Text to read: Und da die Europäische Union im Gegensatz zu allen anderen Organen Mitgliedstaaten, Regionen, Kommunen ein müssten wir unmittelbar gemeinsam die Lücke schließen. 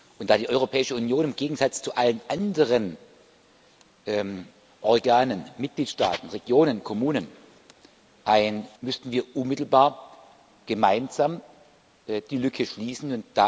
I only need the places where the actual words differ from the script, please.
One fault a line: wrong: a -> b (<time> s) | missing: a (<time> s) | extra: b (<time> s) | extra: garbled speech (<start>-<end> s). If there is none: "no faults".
no faults